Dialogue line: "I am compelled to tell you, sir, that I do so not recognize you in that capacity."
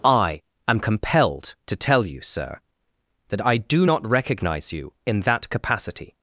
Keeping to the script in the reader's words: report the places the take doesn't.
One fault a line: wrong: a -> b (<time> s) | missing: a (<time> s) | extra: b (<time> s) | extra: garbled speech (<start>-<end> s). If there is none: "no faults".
missing: so (3.9 s)